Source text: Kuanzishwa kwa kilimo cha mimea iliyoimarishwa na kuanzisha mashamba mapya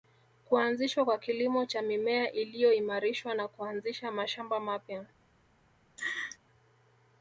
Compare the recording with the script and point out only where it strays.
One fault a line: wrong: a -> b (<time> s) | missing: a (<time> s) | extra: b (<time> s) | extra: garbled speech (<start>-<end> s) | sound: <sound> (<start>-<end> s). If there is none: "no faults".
sound: laugh (6.0-6.4 s)